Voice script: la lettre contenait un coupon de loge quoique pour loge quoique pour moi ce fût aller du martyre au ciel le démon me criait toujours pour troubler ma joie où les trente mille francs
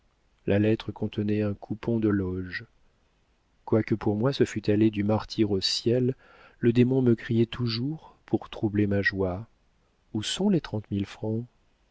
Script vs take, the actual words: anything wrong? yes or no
yes